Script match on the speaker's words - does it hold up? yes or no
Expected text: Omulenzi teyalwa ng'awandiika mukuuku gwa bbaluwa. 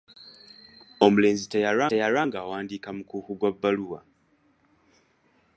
no